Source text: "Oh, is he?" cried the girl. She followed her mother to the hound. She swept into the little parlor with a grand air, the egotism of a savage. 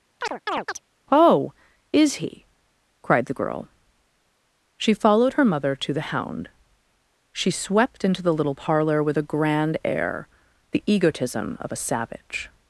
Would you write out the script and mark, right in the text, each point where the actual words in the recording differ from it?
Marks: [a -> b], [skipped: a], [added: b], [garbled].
"Oh, is he?" cried the girl. She followed her mother to the hound. She swept into the little parlor with a grand air, the egotism of a savage.